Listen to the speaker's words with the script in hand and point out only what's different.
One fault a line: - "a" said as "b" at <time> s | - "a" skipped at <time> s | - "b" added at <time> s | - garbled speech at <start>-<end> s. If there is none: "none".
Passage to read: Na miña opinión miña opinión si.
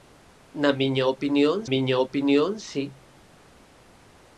none